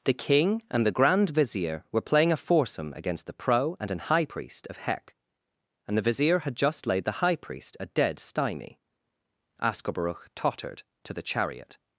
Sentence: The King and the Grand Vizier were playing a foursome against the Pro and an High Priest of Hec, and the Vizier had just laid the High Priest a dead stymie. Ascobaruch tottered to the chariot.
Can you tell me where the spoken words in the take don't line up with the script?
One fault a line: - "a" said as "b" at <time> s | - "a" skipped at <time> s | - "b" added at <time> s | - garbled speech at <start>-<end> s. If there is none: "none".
none